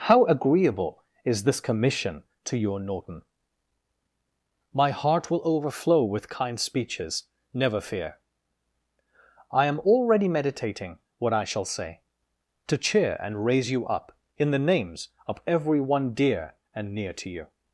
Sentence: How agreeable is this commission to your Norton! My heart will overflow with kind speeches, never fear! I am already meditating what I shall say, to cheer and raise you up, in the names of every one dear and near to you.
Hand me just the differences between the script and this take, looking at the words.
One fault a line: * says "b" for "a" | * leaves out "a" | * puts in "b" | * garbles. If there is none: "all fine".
all fine